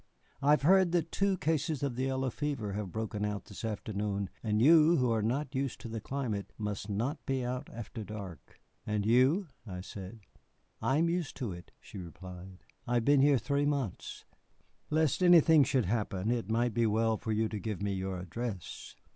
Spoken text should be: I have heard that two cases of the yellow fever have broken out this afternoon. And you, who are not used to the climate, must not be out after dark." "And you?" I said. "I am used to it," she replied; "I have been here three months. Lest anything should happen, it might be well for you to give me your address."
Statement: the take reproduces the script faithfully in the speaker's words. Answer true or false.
true